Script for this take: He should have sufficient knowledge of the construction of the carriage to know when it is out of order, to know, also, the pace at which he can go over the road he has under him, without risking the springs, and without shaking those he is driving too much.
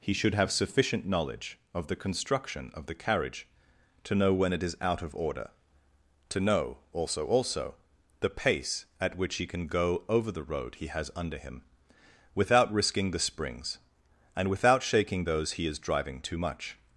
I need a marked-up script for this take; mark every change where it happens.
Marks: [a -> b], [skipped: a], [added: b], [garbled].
He should have sufficient knowledge of the construction of the carriage to know when it is out of order, to know, also, [added: also] the pace at which he can go over the road he has under him, without risking the springs, and without shaking those he is driving too much.